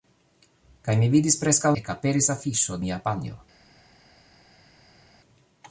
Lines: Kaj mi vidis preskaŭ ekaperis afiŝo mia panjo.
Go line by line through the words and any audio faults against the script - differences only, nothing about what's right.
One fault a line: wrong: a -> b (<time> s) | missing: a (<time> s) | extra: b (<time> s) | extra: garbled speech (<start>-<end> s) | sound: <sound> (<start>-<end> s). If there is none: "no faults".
no faults